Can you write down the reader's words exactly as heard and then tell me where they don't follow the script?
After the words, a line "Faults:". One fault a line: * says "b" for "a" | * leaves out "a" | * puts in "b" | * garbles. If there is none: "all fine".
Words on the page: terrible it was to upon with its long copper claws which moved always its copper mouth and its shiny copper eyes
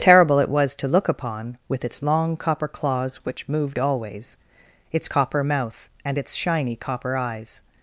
terrible it was to look upon with its long copper claws which moved always its copper mouth and its shiny copper eyes
Faults:
* puts in "look"